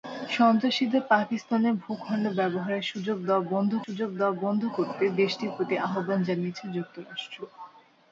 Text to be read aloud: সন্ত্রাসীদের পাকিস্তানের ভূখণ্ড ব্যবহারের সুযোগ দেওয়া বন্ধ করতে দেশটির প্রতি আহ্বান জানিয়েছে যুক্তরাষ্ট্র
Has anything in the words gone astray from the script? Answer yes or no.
yes